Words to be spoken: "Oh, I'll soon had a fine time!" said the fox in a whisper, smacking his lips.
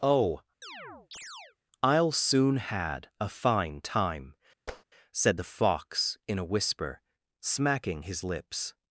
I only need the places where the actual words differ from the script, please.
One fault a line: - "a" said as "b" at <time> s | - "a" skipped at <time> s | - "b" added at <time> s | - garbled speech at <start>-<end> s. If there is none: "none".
none